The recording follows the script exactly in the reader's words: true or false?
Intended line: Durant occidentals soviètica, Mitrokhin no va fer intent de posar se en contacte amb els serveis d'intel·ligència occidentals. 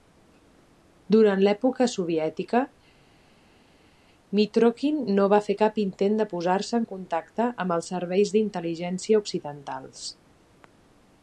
false